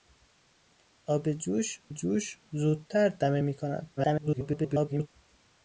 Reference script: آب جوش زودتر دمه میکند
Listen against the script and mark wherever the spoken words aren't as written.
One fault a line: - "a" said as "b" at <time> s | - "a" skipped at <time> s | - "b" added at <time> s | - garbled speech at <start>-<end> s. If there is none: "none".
- "جوش" added at 1.9 s
- garbled speech at 4.0-5.1 s